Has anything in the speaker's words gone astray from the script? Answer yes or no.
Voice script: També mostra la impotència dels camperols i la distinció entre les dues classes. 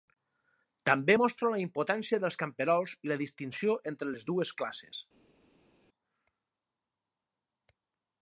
no